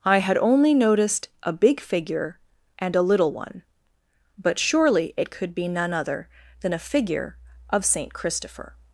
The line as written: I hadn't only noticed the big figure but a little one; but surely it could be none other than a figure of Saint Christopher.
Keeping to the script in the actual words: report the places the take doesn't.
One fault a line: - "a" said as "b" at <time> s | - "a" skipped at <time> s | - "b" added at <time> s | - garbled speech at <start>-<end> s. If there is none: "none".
- "hadn't" said as "had" at 0.2 s
- "the" said as "a" at 1.4 s
- "but" said as "and" at 2.8 s